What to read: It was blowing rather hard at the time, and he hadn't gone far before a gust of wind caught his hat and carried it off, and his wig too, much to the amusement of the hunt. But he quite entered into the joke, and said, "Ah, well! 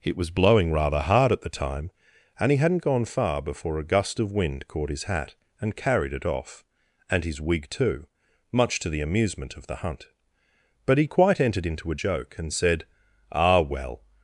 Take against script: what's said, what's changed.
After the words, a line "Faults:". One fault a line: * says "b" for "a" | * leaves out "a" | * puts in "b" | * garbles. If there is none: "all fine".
It was blowing rather hard at the time, and he hadn't gone far before a gust of wind caught his hat and carried it off, and his wig too, much to the amusement of the hunt. But he quite entered into a joke, and said, "Ah, well!
Faults:
* says "a" for "the"